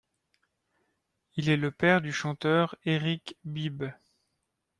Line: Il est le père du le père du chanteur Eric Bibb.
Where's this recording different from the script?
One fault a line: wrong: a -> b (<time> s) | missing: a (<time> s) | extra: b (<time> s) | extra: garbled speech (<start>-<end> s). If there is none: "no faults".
missing: le père du (2.1 s)